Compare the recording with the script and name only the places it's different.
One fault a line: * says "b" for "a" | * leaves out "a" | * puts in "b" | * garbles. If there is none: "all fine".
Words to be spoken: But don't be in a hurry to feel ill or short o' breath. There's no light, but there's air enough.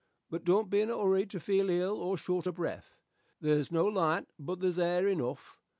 all fine